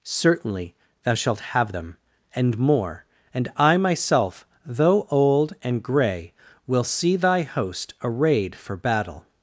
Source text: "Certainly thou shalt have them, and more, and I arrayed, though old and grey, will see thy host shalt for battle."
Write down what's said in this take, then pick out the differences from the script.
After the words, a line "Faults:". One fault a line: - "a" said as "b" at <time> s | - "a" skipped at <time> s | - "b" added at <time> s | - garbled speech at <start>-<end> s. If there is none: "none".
"Certainly thou shalt have them, and more, and I myself, though old and grey, will see thy host arrayed for battle."
Faults:
- "arrayed" said as "myself" at 3.8 s
- "shalt" said as "arrayed" at 8.0 s